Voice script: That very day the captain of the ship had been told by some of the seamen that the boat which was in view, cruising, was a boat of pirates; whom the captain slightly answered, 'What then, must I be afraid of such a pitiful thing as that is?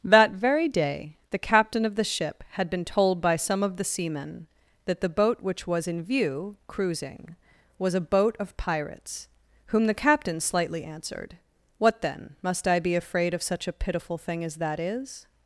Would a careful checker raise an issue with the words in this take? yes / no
no